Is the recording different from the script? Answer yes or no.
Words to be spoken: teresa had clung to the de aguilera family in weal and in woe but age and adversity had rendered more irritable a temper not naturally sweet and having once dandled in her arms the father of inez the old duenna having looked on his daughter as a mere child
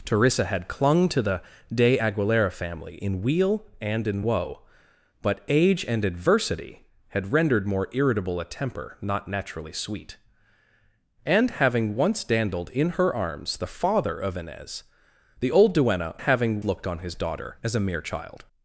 no